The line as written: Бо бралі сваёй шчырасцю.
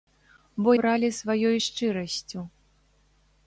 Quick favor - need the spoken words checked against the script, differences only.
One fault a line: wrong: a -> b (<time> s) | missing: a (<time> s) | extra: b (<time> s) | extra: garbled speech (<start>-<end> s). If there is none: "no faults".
no faults